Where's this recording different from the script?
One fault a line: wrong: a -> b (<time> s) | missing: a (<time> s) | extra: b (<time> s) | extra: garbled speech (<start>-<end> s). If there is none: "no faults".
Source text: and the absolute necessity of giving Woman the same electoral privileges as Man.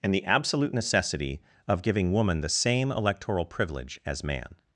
wrong: privileges -> privilege (3.5 s)